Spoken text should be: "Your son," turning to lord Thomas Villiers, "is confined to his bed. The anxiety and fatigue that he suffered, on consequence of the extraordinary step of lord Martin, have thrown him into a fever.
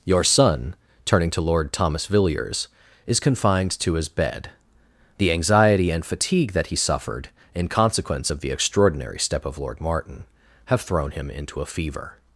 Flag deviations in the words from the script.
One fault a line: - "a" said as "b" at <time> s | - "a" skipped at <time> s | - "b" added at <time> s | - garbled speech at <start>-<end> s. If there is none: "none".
- "on" said as "in" at 7.5 s